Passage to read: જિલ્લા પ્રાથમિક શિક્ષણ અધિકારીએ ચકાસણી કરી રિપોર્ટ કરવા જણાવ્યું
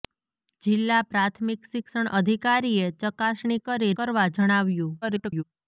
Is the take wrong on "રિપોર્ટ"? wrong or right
wrong